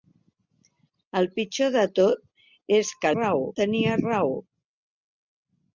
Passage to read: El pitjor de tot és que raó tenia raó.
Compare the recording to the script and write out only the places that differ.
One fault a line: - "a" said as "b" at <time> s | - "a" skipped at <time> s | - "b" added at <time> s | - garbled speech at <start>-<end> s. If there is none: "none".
none